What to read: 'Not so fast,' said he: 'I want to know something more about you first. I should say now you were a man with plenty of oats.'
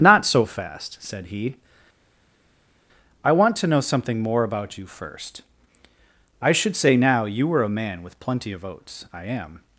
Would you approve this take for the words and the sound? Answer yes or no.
no